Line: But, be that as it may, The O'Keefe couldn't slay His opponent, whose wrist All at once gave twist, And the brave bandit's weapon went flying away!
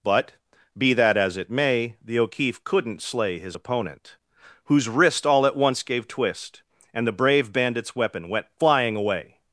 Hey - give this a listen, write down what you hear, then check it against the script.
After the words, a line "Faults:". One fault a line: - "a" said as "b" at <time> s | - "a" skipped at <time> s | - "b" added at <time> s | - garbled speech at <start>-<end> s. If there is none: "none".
But, be that as it may, The O'Keefe couldn't slay His opponent, whose wrist All at once gave twist, And the brave bandit's weapon went flying away!
Faults:
none